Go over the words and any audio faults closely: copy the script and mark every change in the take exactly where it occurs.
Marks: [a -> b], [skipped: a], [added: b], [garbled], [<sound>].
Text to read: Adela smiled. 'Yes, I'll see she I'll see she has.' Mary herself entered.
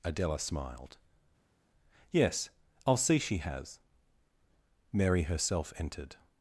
Adela smiled. 'Yes, I'll see she [skipped: I'll see she] has.' Mary herself entered.